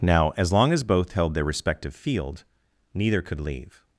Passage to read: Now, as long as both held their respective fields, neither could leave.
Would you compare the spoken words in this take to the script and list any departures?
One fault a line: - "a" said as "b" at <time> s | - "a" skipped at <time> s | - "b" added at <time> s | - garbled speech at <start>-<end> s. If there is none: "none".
- "fields" said as "field" at 1.9 s